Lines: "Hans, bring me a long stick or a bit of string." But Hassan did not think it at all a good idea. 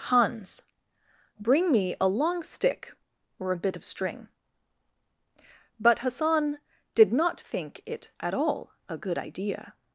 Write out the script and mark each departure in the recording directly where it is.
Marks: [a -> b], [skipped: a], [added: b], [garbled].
"Hans, bring me a long stick or a bit of string." But Hassan did not think it at all a good idea.